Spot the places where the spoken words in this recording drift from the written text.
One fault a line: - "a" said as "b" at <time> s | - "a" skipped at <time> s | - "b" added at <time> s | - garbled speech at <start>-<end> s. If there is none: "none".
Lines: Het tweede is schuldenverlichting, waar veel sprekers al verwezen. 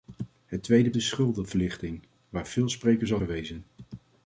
none